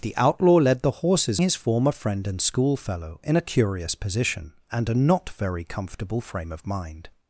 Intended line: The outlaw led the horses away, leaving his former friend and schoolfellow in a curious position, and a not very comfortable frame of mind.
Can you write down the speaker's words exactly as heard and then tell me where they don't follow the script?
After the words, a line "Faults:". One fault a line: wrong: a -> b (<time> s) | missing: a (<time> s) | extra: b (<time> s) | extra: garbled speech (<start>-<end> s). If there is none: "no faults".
The outlaw led the horses his former friend and schoolfellow in a curious position, and a not very comfortable frame of mind.
Faults:
missing: away leaving (1.4 s)